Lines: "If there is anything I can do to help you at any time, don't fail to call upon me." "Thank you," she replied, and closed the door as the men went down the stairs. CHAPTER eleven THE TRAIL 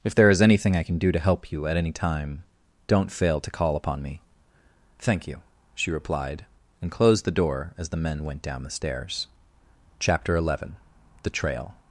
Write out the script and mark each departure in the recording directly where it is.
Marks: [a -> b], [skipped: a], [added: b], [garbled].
"If there is anything I can do to help you at any time, don't fail to call upon me." "Thank you," she replied, and closed the door as the men went down the stairs. CHAPTER eleven THE TRAIL